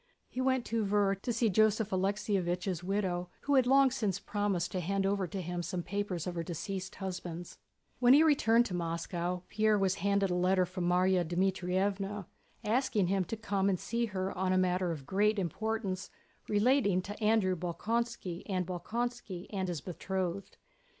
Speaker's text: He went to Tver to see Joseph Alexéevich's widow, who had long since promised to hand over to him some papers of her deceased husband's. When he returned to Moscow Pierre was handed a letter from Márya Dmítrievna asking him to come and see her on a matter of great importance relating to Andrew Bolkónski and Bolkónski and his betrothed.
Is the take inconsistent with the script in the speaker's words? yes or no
no